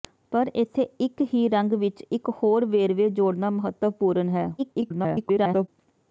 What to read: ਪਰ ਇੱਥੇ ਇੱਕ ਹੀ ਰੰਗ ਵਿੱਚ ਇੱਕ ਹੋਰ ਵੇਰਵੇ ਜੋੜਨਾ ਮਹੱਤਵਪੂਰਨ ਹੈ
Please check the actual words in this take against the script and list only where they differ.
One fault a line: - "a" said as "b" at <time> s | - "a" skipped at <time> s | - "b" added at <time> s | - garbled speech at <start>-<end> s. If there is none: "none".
- garbled speech at 4.6-5.7 s